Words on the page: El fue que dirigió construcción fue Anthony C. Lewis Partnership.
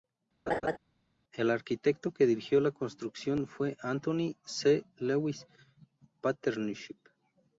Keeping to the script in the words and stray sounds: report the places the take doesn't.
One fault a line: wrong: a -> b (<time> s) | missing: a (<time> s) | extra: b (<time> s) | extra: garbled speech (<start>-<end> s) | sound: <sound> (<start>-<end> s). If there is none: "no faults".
sound: laugh (0.5-0.8 s)
wrong: fue -> arquitecto (1.5 s)
extra: la (2.6 s)